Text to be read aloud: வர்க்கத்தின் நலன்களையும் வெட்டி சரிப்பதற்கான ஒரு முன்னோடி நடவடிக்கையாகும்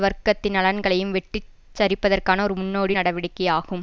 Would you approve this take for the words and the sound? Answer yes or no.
yes